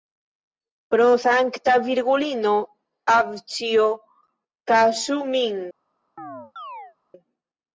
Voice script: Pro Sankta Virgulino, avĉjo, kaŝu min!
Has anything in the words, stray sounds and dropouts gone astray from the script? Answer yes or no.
yes